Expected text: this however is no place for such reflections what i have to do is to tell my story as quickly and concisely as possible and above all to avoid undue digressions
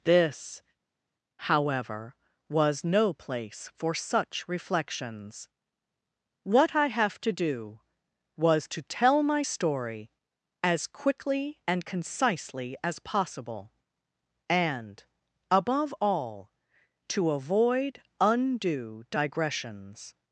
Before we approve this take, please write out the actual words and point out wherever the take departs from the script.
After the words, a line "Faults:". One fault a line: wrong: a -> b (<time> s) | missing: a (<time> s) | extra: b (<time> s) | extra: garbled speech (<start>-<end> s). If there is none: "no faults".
this however was no place for such reflections what i have to do was to tell my story as quickly and concisely as possible and above all to avoid undue digressions
Faults:
wrong: is -> was (2.5 s)
wrong: is -> was (8.4 s)